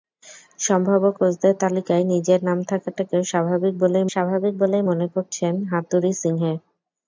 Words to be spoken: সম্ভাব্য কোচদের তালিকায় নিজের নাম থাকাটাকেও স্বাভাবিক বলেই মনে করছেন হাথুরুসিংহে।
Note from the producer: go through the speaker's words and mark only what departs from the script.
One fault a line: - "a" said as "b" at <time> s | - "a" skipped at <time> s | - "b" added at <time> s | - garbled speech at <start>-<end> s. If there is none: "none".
- "স্বাভাবিক বলেই" added at 4.1 s